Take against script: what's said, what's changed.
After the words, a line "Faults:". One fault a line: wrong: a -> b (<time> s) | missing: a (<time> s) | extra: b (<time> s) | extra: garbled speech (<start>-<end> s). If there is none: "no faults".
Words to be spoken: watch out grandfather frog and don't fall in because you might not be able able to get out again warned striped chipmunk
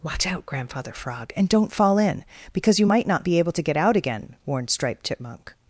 watch out grandfather frog and don't fall in because you might not be able to get out again warned striped chipmunk
Faults:
missing: able (3.5 s)